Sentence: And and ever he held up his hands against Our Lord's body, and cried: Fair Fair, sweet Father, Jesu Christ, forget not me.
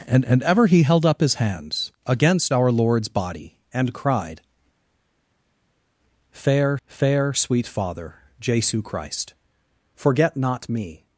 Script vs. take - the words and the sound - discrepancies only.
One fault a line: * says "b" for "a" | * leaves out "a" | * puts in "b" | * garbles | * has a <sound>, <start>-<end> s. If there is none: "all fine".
all fine